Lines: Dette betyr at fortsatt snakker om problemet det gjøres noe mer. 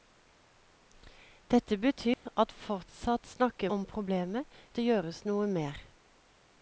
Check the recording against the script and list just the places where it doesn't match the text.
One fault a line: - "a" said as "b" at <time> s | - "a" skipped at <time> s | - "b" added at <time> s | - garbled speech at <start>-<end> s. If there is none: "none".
none